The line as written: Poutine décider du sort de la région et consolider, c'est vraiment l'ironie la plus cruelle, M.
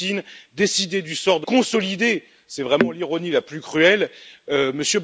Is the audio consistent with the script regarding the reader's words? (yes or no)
no